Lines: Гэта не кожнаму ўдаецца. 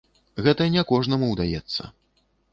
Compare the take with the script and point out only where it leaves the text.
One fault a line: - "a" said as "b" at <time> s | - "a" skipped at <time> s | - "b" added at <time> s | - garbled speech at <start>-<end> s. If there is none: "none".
none